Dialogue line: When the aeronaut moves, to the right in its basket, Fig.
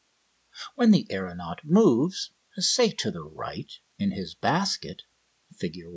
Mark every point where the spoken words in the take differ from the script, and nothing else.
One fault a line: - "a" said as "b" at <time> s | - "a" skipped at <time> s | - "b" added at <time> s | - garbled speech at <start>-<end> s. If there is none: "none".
- "say" added at 2.6 s
- "its" said as "his" at 4.1 s